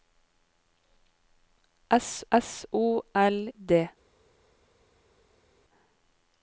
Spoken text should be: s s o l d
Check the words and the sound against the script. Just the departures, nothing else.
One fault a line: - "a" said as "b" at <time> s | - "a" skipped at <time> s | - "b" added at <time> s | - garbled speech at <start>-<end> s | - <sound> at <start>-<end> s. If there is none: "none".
none